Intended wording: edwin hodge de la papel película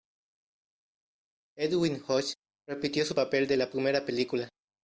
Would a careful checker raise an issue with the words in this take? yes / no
yes